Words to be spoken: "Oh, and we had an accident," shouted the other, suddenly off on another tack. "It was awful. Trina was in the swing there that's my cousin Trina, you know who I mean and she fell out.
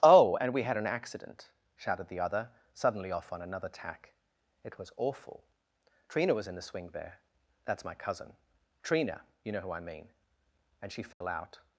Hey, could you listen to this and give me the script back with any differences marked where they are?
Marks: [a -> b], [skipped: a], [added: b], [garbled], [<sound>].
"Oh, and we had an accident," shouted the other, suddenly off on another tack. "It was awful. Trina was in the swing there that's my cousin Trina, you know who I mean and she fell [dropout] out.